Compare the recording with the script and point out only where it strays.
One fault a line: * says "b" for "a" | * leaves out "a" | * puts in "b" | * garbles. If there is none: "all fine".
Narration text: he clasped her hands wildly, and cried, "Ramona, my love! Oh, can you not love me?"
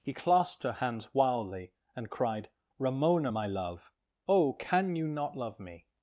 all fine